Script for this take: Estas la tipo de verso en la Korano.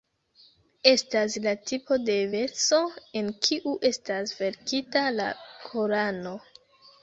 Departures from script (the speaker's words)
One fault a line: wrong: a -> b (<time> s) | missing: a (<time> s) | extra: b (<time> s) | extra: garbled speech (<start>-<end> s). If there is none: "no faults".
extra: kiu estas verkita (3.5 s)